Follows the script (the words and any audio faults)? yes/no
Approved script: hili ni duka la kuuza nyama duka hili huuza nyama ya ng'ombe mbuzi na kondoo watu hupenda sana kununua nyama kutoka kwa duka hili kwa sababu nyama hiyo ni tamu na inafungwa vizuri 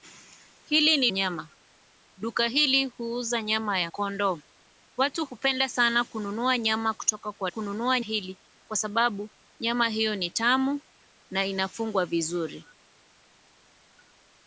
no